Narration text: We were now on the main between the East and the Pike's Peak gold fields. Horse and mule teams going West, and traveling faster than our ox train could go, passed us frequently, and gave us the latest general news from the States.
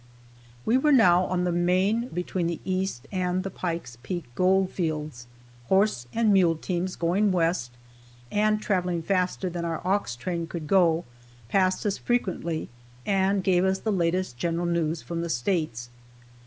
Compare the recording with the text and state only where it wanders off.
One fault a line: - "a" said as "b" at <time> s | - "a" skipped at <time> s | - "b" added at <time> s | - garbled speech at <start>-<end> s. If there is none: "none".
none